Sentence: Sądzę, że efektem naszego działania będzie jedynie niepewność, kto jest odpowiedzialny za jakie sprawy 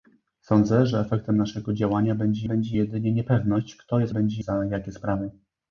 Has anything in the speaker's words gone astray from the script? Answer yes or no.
yes